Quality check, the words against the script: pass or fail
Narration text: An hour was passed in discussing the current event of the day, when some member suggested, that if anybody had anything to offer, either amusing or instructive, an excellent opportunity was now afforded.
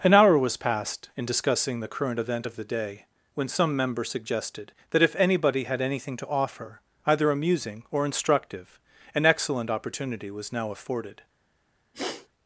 pass